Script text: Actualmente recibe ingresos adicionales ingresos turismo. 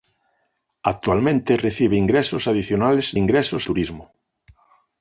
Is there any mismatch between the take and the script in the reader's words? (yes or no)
no